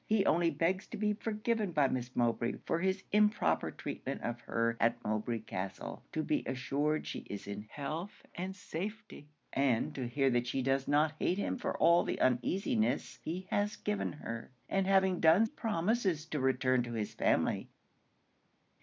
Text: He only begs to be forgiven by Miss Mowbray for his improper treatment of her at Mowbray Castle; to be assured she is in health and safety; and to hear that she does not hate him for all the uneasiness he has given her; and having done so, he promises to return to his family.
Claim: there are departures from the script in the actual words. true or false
true